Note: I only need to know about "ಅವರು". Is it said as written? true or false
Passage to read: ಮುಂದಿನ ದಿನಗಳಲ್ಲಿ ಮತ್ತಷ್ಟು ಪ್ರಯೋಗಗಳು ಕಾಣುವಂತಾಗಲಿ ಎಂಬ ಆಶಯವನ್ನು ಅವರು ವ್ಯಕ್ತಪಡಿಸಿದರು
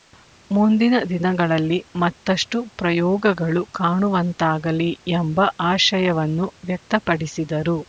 false